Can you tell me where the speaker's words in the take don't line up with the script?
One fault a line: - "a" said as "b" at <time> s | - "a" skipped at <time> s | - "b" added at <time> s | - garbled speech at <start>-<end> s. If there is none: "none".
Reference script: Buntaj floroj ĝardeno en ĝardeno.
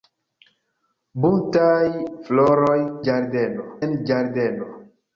none